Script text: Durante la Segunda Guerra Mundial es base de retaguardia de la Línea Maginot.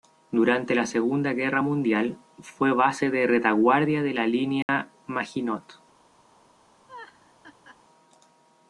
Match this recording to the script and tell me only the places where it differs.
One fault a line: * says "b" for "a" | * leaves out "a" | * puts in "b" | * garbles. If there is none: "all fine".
* says "fue" for "es"